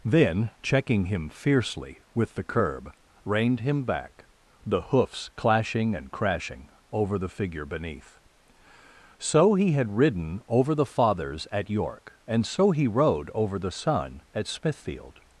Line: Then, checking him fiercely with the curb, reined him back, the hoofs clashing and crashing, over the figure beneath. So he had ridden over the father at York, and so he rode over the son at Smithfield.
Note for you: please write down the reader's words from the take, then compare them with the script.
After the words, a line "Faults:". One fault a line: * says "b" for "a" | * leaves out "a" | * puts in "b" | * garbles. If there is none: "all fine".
Then, checking him fiercely with the curb, reined him back, the hoofs clashing and crashing, over the figure beneath. So he had ridden over the fathers at York, and so he rode over the son at Smithfield.
Faults:
* says "fathers" for "father"